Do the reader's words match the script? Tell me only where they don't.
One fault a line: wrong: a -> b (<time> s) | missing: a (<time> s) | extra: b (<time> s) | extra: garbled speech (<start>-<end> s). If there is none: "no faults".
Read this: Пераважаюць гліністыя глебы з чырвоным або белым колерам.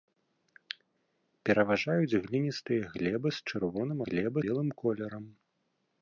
wrong: або -> глебы (4.1 s)